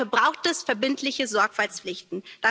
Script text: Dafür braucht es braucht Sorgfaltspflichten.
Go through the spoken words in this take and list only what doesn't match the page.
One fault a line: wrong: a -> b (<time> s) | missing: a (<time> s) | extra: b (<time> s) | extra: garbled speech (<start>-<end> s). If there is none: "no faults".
wrong: braucht -> verbindliche (0.6 s)